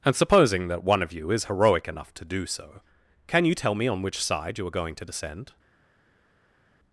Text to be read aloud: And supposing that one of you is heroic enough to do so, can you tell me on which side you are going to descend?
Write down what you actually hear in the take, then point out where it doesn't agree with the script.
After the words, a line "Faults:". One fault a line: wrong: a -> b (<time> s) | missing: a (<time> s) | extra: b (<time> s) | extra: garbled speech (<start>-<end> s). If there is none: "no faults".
And supposing that one of you is heroic enough to do so, can you tell me on which side you are going to descend?
Faults:
no faults